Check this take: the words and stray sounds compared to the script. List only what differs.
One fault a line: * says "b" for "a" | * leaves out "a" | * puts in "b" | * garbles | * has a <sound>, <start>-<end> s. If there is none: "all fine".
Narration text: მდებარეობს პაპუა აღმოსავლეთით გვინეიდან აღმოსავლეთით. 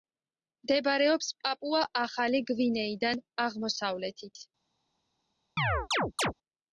* says "ახალი" for "აღმოსავლეთით"
* has a chirp, 5.6-6.3 s